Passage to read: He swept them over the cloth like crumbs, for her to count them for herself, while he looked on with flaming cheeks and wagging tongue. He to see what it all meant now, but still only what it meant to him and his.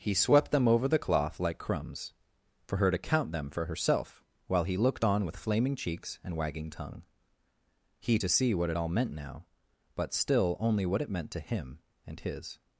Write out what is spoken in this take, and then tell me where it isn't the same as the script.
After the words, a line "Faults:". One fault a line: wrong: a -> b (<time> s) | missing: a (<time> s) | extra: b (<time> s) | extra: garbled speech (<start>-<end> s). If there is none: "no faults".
He swept them over the cloth like crumbs, for her to count them for herself, while he looked on with flaming cheeks and wagging tongue. He to see what it all meant now, but still only what it meant to him and his.
Faults:
no faults